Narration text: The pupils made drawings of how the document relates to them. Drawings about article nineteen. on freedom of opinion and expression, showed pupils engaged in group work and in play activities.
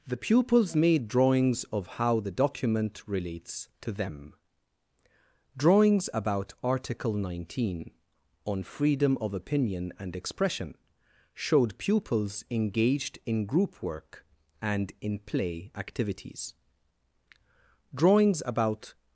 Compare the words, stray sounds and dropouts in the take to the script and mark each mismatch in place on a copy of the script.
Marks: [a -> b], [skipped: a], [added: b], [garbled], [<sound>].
The pupils made drawings of how the document relates to them. Drawings about article nineteen. on freedom of opinion and expression, showed pupils engaged in group work and in play activities. [added: Drawings about]